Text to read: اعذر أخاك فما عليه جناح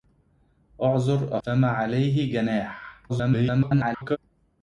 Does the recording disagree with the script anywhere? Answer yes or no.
yes